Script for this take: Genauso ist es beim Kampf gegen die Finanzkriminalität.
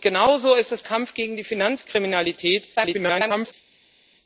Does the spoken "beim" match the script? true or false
false